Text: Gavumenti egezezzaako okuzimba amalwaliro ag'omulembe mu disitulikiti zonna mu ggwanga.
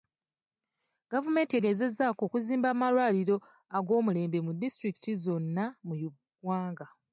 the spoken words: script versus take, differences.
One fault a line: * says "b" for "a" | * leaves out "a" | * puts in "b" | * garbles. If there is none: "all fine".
all fine